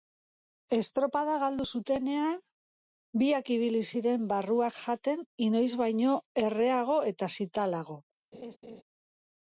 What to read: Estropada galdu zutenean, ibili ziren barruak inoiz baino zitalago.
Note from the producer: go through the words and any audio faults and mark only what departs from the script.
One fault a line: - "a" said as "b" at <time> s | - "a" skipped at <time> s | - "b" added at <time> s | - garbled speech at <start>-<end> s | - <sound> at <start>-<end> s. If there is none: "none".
- "biak" added at 3.2 s
- "jaten" added at 4.8 s
- "erreago eta" added at 6.5 s
- laugh at 8.3-8.8 s